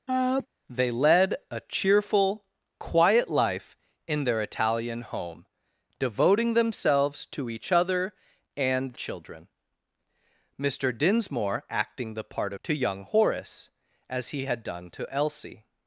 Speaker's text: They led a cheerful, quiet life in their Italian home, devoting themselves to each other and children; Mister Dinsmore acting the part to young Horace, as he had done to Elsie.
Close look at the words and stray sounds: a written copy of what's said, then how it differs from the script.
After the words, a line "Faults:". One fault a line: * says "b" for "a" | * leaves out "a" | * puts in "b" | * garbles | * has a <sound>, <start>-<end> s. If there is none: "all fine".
They led a cheerful, quiet life in their Italian home, devoting themselves to each other and children; Mister Dinsmore acting the part to young Horace, as he had done to Elsie.
Faults:
* has a sneeze, 0.1-0.5 s